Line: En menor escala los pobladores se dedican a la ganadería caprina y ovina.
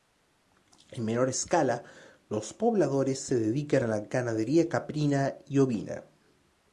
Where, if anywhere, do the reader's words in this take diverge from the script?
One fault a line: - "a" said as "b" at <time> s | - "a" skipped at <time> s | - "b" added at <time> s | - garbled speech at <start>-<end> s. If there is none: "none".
none